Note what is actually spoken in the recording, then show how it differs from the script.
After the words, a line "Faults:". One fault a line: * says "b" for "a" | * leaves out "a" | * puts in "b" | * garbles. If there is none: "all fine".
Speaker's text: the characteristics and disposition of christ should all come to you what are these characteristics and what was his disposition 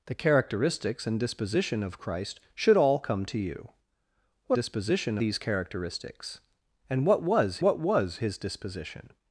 the characteristics and disposition of christ should all come to you what disposition these characteristics and what was what was his disposition
Faults:
* says "disposition" for "are"
* puts in "what was"